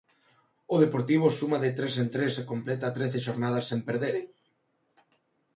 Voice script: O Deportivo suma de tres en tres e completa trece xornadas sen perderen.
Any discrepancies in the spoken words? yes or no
no